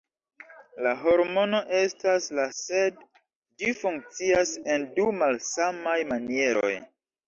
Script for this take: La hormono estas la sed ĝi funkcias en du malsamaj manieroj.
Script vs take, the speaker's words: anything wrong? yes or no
no